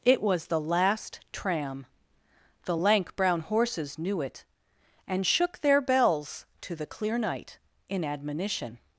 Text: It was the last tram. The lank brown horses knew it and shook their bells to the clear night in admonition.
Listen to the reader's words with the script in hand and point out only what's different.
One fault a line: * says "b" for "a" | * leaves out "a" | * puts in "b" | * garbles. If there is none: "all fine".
all fine